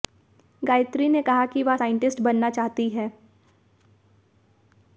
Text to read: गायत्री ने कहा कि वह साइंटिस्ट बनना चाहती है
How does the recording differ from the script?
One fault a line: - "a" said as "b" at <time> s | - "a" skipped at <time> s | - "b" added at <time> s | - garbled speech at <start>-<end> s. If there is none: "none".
none